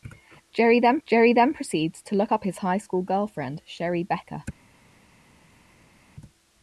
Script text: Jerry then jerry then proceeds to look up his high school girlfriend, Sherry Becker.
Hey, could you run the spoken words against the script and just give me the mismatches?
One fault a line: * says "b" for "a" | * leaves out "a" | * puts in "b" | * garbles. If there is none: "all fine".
all fine